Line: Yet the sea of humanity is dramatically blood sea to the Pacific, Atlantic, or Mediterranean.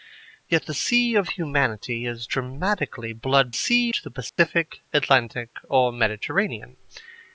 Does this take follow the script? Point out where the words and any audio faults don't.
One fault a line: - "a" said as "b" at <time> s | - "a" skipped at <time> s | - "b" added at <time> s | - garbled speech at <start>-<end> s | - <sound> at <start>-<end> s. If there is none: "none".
- dropout at 4.3-4.4 s